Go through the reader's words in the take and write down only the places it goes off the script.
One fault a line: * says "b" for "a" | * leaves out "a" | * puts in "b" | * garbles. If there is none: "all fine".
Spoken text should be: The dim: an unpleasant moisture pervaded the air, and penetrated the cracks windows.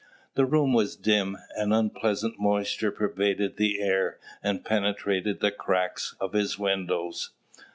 * puts in "room was"
* puts in "of his"